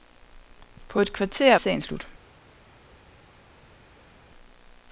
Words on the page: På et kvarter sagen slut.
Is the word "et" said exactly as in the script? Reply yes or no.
yes